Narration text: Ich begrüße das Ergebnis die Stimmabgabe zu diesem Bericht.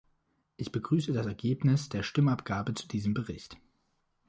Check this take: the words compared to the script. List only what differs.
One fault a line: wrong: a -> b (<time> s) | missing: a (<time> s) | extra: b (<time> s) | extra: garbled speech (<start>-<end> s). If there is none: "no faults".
wrong: die -> der (1.9 s)